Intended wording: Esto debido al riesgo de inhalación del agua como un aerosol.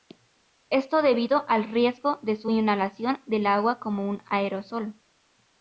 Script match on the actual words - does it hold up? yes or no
no